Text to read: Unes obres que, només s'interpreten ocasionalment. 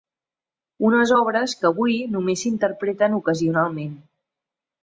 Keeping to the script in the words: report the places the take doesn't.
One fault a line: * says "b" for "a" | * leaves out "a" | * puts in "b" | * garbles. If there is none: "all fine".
* puts in "avui"